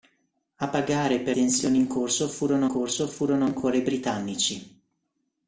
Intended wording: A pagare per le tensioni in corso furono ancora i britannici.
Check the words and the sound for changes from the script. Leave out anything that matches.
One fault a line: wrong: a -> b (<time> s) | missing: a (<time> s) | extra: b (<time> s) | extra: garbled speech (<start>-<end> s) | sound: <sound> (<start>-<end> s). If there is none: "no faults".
missing: le (1.4 s)
extra: corso furono (2.7 s)